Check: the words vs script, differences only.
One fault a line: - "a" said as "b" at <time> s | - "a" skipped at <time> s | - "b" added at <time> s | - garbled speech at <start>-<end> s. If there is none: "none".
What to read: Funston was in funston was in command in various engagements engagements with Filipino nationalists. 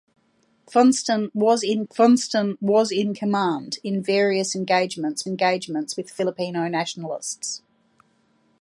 none